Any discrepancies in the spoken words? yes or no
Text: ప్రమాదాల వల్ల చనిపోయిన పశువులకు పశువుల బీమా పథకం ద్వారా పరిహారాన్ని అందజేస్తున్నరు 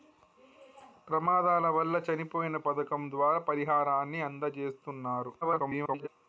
yes